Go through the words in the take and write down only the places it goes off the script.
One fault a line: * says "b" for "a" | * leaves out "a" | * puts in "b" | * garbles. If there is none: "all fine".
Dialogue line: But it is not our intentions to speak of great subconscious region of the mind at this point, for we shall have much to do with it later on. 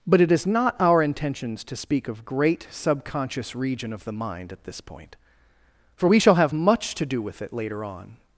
all fine